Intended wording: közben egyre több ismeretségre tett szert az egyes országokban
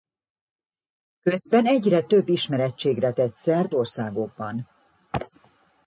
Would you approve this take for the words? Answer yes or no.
no